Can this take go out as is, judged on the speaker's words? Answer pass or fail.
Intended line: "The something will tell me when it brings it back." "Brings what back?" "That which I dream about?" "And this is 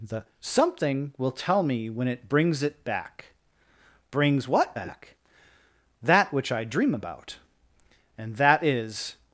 fail